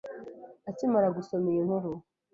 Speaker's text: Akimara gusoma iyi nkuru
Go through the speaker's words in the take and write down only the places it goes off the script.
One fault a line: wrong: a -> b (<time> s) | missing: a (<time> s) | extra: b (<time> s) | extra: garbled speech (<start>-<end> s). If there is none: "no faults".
no faults